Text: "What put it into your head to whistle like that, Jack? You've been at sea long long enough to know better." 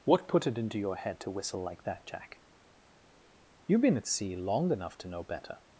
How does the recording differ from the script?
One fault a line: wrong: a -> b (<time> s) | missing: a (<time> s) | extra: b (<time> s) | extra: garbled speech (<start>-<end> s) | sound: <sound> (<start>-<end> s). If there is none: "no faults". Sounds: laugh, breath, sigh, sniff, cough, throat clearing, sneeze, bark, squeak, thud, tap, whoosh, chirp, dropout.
missing: long (4.7 s)